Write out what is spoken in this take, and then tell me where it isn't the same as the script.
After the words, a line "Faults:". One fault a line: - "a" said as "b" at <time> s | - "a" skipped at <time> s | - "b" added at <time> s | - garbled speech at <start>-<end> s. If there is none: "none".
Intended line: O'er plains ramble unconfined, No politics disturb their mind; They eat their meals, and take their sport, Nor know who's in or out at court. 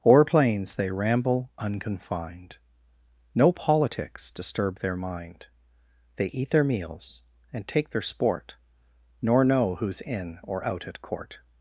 O'er plains they ramble unconfined, No politics disturb their mind; They eat their meals, and take their sport, Nor know who's in or out at court.
Faults:
- "they" added at 0.8 s